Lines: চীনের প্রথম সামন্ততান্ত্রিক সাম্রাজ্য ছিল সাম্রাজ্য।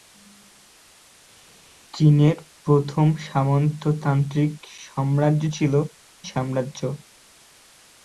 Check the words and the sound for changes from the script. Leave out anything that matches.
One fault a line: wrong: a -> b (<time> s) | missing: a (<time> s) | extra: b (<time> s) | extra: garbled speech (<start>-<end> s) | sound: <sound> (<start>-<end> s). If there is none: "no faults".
no faults